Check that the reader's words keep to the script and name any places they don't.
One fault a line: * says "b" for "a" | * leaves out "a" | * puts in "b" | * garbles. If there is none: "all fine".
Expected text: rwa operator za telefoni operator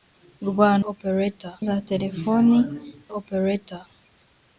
all fine